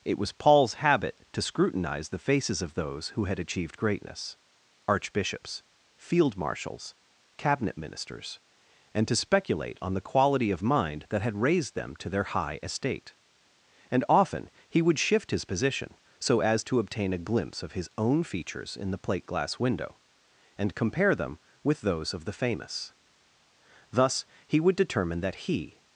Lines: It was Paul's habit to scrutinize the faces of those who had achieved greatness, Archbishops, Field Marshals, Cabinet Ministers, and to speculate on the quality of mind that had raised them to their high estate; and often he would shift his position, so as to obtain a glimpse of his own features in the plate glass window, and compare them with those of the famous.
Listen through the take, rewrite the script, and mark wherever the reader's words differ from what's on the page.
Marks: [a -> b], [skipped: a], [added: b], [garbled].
It was Paul's habit to scrutinize the faces of those who had achieved greatness, Archbishops, Field Marshals, Cabinet Ministers, and to speculate on the quality of mind that had raised them to their high estate; and often he would shift his position, so as to obtain a glimpse of his own features in the plate glass window, and compare them with those of the famous. [added: Thus he would determine that he]